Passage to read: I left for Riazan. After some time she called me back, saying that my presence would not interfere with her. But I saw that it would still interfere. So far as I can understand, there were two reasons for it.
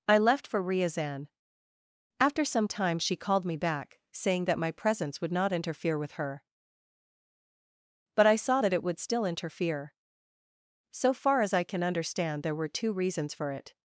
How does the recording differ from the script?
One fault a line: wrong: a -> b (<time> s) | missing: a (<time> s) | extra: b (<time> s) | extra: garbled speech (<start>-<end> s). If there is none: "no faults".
no faults